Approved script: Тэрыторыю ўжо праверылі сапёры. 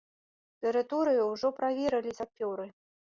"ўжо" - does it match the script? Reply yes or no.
yes